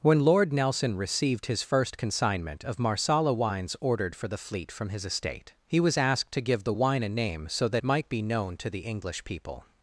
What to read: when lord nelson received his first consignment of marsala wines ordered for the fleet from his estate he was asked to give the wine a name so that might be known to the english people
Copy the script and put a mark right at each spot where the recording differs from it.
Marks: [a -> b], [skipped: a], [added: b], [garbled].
when lord nelson received his first consignment of marsala wines ordered for the fleet from his estate he was asked to give the wine a name so that might be known to the english people